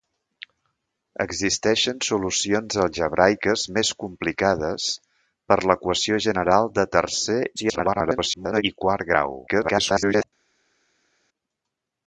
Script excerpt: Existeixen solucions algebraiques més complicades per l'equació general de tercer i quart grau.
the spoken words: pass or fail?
fail